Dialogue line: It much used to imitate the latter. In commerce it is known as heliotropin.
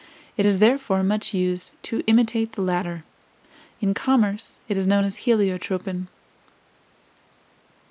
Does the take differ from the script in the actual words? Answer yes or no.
yes